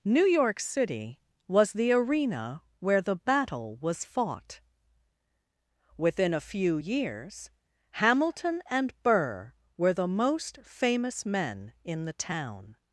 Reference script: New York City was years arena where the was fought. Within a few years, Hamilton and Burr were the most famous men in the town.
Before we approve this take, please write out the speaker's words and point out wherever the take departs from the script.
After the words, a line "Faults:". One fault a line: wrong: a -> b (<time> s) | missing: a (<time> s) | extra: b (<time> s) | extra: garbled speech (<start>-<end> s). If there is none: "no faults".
New York City was the arena where the battle was fought. Within a few years, Hamilton and Burr were the most famous men in the town.
Faults:
wrong: years -> the (1.7 s)
extra: battle (3.1 s)